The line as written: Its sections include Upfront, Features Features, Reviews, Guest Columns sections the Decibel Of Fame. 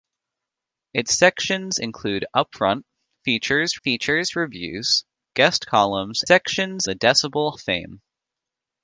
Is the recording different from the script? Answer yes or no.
no